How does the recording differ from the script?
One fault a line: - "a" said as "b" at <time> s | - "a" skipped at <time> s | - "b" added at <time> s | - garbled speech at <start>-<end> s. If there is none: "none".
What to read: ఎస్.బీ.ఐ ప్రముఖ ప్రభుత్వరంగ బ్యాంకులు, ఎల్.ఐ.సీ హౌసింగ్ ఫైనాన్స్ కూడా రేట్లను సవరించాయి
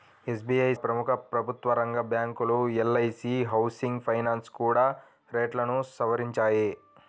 none